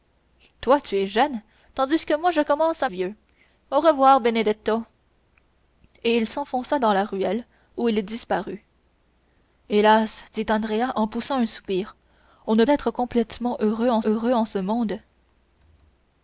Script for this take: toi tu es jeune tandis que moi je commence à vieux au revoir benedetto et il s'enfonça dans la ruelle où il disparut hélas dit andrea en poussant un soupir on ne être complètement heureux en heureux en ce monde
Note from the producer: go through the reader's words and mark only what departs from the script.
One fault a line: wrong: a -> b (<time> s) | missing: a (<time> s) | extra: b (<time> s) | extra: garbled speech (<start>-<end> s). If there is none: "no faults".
no faults